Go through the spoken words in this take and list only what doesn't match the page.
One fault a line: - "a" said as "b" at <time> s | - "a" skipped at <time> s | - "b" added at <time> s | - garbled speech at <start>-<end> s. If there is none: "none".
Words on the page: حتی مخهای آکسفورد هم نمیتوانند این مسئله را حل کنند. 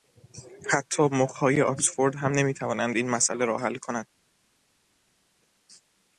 none